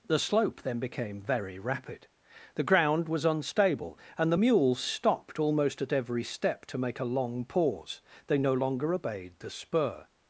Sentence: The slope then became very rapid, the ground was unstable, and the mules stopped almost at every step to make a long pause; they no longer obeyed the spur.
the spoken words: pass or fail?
pass